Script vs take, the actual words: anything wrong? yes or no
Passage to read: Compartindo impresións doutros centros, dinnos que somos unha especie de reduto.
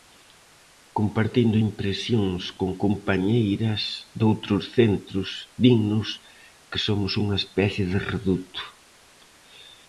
yes